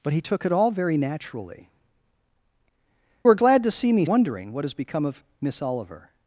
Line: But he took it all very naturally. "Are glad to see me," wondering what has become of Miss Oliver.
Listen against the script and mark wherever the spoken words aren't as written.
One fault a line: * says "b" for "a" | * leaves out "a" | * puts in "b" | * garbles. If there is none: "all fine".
all fine